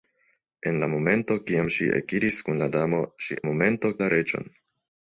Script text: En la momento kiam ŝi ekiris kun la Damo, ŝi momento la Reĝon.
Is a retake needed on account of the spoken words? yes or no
no